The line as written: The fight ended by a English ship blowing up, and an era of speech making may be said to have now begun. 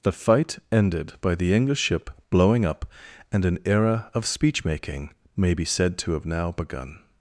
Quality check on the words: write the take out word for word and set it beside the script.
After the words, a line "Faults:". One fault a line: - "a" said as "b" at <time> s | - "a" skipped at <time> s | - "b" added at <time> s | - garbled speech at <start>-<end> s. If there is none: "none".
The fight ended by the English ship blowing up, and an era of speech making may be said to have now begun.
Faults:
- "a" said as "the" at 1.3 s